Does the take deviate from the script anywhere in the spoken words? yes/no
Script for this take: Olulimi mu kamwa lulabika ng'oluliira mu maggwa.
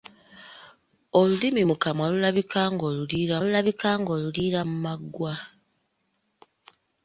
yes